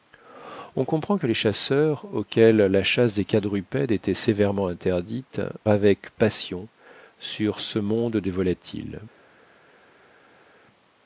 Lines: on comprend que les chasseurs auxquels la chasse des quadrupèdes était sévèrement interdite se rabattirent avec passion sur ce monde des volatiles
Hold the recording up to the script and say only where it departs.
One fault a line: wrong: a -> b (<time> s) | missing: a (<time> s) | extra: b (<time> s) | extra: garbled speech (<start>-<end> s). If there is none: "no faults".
missing: se rabattirent (5.4 s)